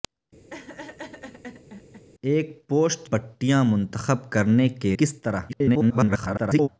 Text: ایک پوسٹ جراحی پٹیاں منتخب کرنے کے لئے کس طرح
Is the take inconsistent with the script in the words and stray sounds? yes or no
yes